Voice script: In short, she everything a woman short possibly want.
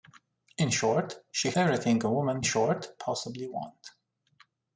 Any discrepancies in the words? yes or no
no